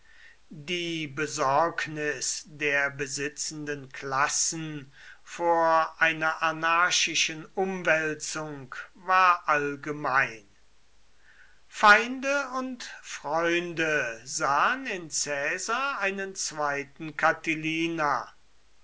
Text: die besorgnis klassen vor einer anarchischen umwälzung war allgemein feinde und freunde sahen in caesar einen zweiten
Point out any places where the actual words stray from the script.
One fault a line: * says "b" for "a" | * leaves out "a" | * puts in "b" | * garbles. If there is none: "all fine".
* puts in "der besitzenden"